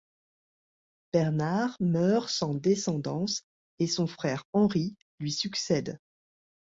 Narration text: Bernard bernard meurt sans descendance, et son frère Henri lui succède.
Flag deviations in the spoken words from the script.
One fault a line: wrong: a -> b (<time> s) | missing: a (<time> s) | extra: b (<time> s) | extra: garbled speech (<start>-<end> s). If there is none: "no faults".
missing: bernard (1.8 s)